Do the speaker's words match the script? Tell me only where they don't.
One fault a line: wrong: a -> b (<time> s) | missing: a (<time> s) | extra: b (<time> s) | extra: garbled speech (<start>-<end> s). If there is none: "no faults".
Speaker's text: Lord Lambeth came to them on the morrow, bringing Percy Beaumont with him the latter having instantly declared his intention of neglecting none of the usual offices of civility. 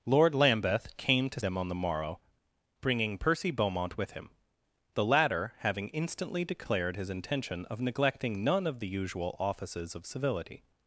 no faults